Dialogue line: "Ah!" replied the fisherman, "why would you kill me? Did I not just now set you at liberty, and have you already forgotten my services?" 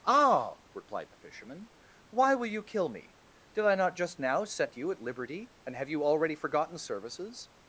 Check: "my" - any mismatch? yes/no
yes